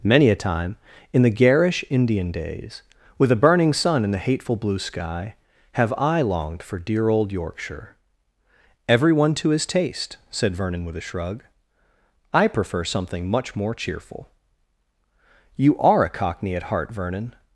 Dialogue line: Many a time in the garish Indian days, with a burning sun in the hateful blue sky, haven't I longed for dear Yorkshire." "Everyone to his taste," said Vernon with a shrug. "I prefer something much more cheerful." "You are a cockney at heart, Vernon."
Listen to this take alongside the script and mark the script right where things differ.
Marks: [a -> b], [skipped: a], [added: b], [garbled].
Many a time in the garish Indian days, with a burning sun in the hateful blue sky, [haven't -> have] I longed for dear [added: old] Yorkshire." "Everyone to his taste," said Vernon with a shrug. "I prefer something much more cheerful." "You are a cockney at heart, Vernon."